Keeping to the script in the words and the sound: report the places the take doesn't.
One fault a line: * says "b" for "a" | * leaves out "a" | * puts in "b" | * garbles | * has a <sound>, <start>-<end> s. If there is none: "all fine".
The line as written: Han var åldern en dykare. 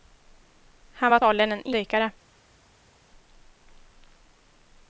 all fine